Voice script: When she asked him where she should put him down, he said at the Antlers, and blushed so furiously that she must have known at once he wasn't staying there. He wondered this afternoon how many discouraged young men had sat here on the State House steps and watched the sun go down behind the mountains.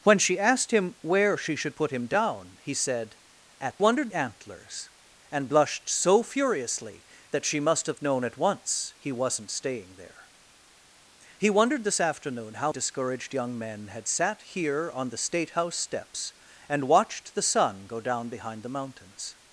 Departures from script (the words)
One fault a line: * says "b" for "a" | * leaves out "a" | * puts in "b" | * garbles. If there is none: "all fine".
* says "wondered" for "the"
* leaves out "many"